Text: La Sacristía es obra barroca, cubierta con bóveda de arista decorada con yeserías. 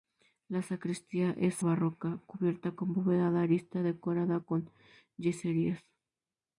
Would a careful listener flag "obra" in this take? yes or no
yes